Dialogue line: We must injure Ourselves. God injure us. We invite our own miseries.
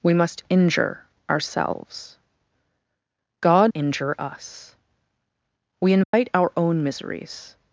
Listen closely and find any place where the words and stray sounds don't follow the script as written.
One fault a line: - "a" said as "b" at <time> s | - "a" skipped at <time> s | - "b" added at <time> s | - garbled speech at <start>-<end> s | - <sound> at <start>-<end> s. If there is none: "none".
- dropout at 6.0-6.1 s